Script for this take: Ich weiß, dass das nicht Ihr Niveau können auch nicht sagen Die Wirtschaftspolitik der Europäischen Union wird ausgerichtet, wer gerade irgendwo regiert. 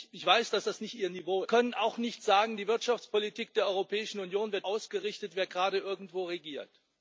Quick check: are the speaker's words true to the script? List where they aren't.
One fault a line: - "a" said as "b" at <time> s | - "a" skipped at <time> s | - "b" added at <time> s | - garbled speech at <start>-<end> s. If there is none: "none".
none